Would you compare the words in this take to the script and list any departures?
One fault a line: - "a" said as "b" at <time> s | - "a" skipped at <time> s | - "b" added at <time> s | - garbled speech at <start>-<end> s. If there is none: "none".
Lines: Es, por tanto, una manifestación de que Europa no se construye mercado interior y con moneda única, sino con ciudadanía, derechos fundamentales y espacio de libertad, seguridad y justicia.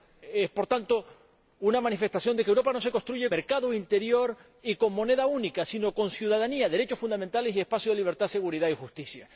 none